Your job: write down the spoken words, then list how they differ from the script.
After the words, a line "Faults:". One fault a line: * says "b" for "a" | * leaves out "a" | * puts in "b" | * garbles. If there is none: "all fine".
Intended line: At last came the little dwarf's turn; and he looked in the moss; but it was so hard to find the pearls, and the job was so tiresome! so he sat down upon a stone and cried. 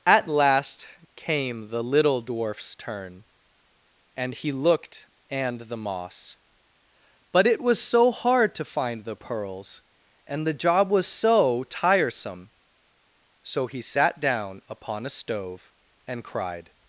At last came the little dwarf's turn; and he looked and the moss; but it was so hard to find the pearls, and the job was so tiresome! so he sat down upon a stove and cried.
Faults:
* says "and" for "in"
* says "stove" for "stone"